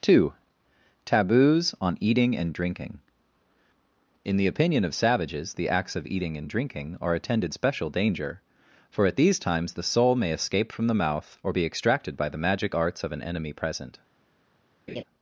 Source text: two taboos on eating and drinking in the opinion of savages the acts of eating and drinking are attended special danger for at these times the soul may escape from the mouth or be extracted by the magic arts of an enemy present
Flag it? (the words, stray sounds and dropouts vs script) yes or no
yes